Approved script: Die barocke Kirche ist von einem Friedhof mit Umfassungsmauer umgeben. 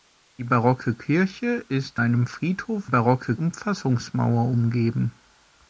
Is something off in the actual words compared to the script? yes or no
yes